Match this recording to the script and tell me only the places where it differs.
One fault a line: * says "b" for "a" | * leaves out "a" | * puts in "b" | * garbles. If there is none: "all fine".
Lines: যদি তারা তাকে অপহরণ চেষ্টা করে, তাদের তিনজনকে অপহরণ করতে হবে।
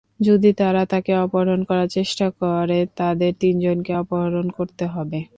* puts in "করার"